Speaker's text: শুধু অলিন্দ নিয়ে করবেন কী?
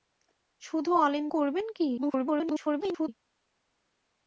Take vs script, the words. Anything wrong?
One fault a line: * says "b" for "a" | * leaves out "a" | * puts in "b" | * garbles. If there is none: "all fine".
* leaves out "নিয়ে"
* garbles